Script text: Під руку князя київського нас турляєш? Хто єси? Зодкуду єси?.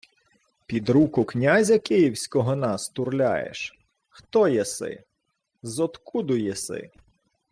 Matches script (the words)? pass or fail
pass